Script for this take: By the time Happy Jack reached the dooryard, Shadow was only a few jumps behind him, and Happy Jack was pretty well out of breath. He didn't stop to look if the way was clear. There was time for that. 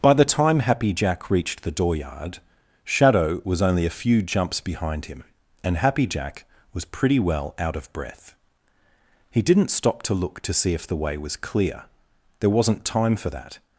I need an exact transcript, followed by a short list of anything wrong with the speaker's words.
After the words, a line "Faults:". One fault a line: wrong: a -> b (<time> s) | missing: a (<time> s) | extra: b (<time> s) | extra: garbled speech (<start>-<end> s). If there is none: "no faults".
By the time Happy Jack reached the dooryard, Shadow was only a few jumps behind him, and Happy Jack was pretty well out of breath. He didn't stop to look to see if the way was clear. There wasn't time for that.
Faults:
extra: to see (10.4 s)
wrong: was -> wasn't (12.5 s)